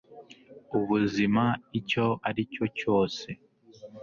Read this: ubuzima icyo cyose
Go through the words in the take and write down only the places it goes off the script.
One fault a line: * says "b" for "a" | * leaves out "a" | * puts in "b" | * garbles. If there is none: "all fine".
* puts in "aricyo"